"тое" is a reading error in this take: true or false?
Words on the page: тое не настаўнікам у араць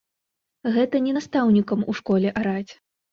true